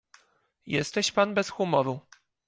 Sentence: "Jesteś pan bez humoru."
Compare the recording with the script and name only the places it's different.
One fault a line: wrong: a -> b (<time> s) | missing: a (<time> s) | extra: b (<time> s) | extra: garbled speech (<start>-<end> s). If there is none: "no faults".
no faults